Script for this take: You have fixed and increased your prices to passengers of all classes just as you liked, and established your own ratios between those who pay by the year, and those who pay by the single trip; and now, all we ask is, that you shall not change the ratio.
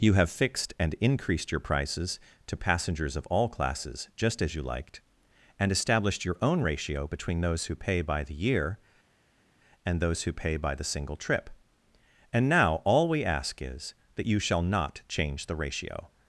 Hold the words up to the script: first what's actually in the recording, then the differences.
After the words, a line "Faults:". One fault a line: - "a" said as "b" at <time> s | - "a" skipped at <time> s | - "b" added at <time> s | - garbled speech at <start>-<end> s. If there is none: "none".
You have fixed and increased your prices to passengers of all classes just as you liked, and established your own ratio between those who pay by the year, and those who pay by the single trip; and now, all we ask is, that you shall not change the ratio.
Faults:
- "ratios" said as "ratio" at 6.6 s